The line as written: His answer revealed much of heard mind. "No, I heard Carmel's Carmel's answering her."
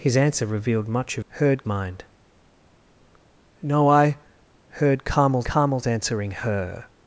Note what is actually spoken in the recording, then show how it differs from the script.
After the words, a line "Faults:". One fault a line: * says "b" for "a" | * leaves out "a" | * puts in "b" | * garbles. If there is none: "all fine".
His answer revealed much of heard mind. "No, I heard Carmel's Carmel's answering her."
Faults:
all fine